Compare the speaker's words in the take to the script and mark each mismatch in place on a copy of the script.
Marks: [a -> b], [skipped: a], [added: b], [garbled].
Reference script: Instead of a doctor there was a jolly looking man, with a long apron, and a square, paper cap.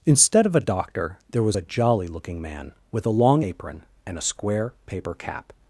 Instead of a doctor there was a jolly looking man, with a long apron, and a square, paper cap.